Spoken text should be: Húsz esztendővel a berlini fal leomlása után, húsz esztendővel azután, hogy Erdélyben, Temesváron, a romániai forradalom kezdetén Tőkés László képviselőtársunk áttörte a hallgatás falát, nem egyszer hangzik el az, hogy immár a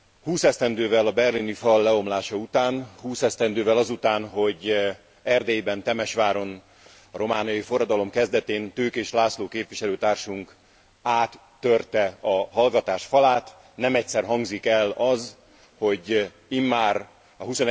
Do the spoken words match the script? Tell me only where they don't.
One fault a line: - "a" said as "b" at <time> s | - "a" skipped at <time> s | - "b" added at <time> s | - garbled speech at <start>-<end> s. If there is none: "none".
none